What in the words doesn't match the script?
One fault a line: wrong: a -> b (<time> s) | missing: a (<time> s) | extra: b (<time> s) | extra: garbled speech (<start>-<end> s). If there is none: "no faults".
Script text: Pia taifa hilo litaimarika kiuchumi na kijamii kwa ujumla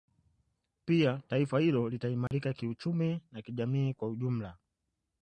no faults